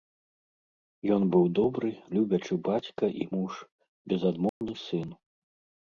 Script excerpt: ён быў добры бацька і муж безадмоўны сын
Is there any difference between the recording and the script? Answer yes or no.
yes